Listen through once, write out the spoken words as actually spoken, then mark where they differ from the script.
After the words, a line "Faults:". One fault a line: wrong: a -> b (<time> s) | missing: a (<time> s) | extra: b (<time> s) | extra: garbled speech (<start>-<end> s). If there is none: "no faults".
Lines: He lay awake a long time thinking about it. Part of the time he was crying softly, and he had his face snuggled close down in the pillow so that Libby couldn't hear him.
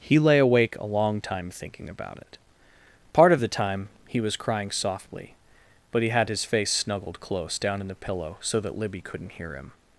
He lay awake a long time thinking about it. Part of the time he was crying softly, but he had his face snuggled close down in the pillow so that Libby couldn't hear him.
Faults:
wrong: and -> but (5.9 s)